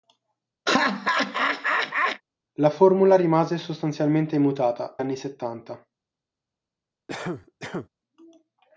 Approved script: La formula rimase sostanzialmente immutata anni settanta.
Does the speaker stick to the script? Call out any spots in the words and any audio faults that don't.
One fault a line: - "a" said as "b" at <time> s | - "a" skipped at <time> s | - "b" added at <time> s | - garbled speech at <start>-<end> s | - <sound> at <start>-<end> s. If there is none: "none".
- laugh at 0.7-2.2 s
- cough at 7.1-7.9 s